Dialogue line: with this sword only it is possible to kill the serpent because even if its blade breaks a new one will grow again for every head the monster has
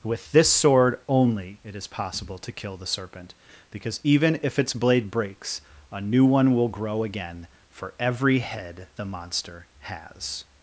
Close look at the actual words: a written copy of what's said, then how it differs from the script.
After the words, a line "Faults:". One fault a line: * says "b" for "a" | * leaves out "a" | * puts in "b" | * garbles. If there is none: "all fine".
with this sword only it is possible to kill the serpent because even if its blade breaks a new one will grow again for every head the monster has
Faults:
all fine